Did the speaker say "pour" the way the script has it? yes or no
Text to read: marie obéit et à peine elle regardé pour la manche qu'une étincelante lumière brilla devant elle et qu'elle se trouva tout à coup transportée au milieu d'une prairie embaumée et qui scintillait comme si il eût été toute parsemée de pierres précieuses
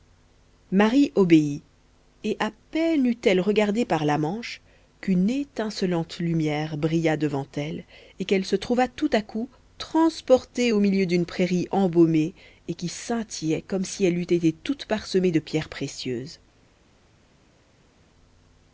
no